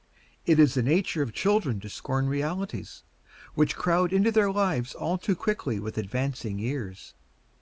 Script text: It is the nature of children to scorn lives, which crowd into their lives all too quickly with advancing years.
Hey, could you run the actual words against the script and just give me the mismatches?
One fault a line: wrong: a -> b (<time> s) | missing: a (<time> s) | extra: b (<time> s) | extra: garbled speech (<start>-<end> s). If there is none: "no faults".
wrong: lives -> realities (2.3 s)